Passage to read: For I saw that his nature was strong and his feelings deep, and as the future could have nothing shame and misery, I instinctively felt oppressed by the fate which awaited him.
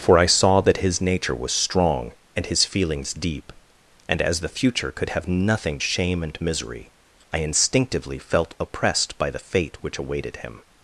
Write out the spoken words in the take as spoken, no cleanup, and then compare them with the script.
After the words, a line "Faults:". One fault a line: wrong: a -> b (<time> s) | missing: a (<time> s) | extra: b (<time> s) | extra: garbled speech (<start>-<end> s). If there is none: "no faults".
For I saw that his nature was strong and his feelings deep, and as the future could have nothing shame and misery, I instinctively felt oppressed by the fate which awaited him.
Faults:
no faults